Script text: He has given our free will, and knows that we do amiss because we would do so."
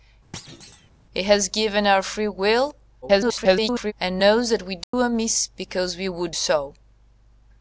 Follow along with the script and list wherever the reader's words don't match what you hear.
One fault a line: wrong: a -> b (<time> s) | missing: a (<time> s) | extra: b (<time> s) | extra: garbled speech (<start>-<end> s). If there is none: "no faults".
extra: garbled speech (3.0-3.9 s)
missing: do (6.3 s)